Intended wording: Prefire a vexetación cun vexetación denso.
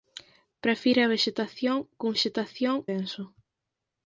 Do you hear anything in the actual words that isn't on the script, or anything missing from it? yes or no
no